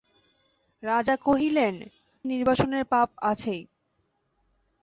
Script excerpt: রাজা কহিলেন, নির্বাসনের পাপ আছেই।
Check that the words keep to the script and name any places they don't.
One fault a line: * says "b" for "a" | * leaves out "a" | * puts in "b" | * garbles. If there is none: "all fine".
all fine